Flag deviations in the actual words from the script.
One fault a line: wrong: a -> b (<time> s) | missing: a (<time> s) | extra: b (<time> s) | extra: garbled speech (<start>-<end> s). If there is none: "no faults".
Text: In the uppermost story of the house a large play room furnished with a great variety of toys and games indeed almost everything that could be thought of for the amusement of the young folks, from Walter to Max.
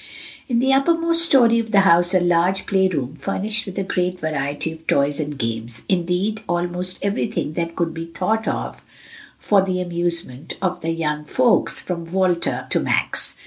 no faults